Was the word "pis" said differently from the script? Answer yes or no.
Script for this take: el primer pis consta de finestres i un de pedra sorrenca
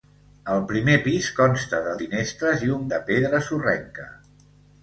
no